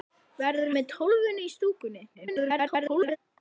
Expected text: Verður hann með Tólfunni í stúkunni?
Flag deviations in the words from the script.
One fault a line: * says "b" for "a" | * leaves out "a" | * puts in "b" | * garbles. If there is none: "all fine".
* leaves out "hann"
* garbles